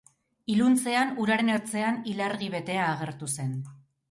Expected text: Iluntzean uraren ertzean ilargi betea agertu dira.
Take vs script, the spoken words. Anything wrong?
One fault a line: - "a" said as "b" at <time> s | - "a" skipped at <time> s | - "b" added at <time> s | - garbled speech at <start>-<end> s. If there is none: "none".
- "dira" said as "zen" at 3.4 s